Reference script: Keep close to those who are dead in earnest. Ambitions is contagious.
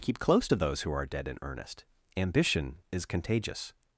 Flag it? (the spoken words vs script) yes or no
yes